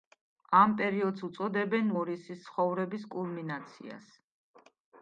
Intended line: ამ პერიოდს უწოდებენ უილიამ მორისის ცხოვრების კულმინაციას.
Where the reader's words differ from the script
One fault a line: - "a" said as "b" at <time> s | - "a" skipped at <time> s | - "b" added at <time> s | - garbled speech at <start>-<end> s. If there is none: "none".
- "უილიამ" skipped at 1.9 s